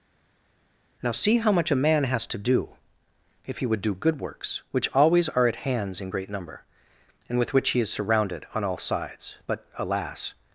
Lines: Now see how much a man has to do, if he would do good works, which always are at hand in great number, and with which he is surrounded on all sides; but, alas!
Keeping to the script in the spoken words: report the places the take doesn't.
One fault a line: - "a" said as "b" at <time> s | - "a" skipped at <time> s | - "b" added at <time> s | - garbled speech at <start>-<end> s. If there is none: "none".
- "hand" said as "hands" at 5.6 s